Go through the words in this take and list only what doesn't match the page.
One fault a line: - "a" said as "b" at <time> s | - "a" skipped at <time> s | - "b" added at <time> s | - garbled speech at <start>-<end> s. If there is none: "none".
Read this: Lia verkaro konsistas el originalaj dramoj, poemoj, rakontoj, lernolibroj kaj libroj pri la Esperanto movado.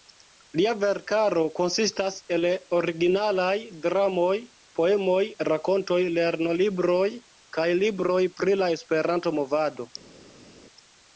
none